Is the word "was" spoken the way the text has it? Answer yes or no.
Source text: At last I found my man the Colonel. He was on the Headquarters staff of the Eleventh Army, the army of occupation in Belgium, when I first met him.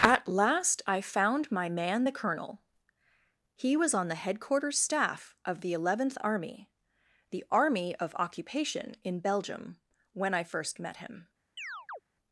yes